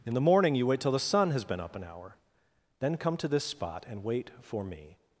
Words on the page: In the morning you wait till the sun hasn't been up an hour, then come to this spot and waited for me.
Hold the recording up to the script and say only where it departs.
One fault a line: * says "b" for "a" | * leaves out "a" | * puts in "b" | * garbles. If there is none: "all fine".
* says "has" for "hasn't"
* says "wait" for "waited"